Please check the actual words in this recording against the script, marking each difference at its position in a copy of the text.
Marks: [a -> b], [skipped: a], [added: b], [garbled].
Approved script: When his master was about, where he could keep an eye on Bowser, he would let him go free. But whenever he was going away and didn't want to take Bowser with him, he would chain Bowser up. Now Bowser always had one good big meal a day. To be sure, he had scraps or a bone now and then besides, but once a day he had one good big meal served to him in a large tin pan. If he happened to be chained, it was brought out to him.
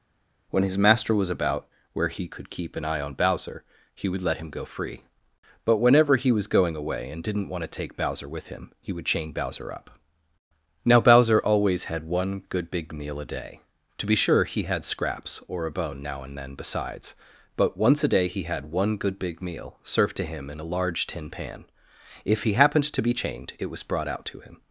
When his master was about, where he could keep an eye on Bowser, he would let him go free. But whenever he was going away and didn't want to take Bowser with him, he would chain Bowser up. Now Bowser always had one good big meal a day. To be sure, he had scraps or a bone now and then besides, but once a day he had one good big meal served to him in a large tin pan. If he happened to be chained, it was brought out to him.